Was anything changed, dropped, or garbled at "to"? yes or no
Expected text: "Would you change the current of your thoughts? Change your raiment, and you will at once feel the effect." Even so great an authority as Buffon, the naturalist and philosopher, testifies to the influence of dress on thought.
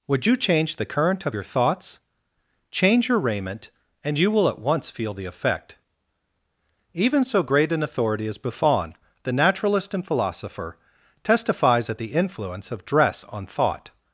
yes